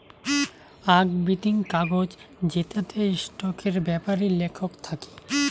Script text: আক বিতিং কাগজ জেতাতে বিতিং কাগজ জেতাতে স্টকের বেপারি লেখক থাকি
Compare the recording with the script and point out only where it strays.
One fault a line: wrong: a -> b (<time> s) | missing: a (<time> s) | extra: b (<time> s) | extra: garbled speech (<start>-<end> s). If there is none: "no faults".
missing: বিতিং কাগজ জেতাতে (3.0 s)